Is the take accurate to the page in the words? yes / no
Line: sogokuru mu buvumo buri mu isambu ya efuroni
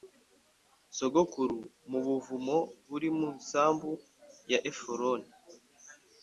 yes